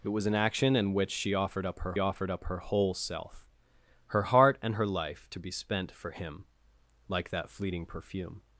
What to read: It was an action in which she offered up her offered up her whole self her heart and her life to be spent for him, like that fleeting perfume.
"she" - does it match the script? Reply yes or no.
yes